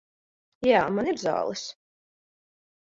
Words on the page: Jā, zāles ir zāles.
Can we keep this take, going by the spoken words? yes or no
no